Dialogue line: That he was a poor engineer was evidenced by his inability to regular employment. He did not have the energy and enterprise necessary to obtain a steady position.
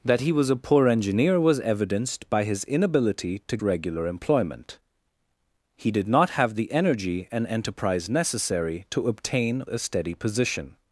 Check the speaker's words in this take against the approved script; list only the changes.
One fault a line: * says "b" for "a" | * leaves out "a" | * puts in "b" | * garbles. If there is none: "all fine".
all fine